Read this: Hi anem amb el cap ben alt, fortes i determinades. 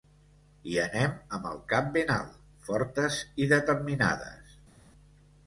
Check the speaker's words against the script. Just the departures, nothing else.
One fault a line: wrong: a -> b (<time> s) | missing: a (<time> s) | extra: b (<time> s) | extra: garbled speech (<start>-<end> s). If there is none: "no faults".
no faults